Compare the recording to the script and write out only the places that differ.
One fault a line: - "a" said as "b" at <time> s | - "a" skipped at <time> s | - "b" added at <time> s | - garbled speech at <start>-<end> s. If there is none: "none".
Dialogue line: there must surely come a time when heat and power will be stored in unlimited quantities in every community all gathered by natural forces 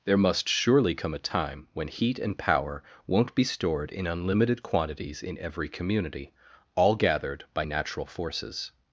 - "will" said as "won't" at 3.0 s